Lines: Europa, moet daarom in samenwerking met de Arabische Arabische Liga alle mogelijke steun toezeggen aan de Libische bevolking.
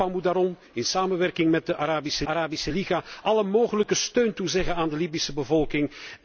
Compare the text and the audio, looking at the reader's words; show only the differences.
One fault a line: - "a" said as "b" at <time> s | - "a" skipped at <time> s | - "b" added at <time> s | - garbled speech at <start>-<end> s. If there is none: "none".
none